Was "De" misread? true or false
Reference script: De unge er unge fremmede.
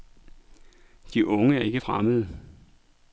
false